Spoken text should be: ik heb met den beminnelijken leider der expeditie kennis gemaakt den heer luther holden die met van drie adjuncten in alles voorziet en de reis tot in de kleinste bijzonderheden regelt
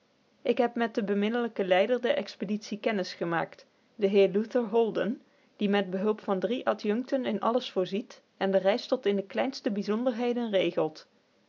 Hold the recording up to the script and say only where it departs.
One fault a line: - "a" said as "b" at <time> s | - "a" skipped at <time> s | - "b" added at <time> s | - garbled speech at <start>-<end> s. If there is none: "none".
- "behulp" added at 5.9 s